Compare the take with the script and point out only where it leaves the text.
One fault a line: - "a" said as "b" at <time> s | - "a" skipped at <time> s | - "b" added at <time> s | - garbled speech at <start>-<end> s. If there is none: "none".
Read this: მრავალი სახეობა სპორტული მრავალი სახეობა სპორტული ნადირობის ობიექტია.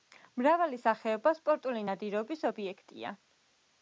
- "მრავალი სახეობა სპორტული" skipped at 1.8 s